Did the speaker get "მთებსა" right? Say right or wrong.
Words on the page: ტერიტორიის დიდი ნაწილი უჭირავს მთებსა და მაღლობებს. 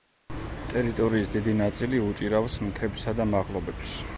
right